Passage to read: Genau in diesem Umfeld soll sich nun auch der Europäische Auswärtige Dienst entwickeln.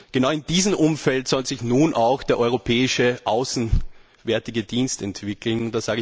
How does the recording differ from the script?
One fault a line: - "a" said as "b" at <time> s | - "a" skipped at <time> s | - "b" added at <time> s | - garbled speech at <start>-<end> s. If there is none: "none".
none